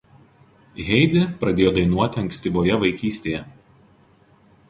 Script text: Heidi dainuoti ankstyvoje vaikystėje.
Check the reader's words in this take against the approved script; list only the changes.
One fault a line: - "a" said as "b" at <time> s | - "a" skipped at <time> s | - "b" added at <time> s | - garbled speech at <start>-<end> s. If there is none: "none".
- "pradėjo" added at 1.4 s